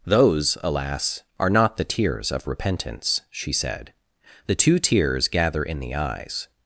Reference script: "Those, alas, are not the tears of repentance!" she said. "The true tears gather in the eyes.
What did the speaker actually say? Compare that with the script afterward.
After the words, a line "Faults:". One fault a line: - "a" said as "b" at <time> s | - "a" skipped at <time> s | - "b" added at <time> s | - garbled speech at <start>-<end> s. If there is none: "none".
"Those, alas, are not the tears of repentance!" she said. "The two tears gather in the eyes.
Faults:
- "true" said as "two" at 4.5 s